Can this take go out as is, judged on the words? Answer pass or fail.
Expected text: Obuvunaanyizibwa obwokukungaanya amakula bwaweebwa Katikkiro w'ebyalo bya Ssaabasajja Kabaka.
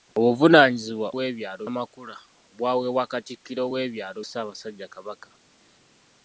fail